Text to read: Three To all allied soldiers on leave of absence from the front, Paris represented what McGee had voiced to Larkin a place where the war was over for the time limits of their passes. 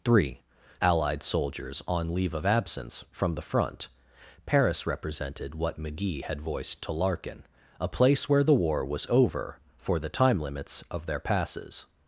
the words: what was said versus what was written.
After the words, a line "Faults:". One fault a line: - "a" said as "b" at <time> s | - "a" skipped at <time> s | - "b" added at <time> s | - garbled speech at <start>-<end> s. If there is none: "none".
Three Allied soldiers on leave of absence from the front, Paris represented what McGee had voiced to Larkin a place where the war was over for the time limits of their passes.
Faults:
- "To all" skipped at 0.4 s